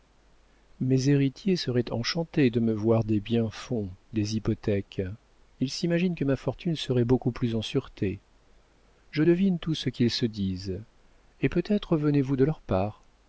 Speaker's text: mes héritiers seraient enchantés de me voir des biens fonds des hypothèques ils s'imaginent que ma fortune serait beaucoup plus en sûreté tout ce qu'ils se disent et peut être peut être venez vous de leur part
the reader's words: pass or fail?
fail